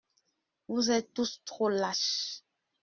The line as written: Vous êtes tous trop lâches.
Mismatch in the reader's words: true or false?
false